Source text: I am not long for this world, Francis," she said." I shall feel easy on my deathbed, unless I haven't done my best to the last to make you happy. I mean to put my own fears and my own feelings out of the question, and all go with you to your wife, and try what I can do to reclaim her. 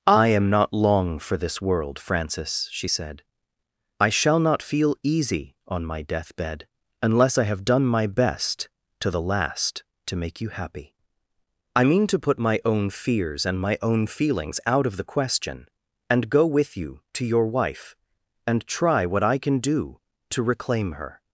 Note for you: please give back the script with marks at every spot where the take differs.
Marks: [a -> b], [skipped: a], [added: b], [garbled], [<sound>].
I am not long for this world, Francis," she said." I shall [added: not] feel easy on my deathbed, unless I [haven't -> have] done my best to the last to make you happy. I mean to put my own fears and my own feelings out of the question, and [skipped: all] go with you to your wife, and try what I can do to reclaim her.